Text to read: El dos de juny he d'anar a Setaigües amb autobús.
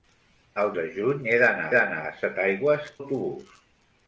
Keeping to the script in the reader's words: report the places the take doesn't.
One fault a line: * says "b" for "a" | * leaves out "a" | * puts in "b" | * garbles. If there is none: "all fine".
* leaves out "dos"
* puts in "d'anar"
* leaves out "amb"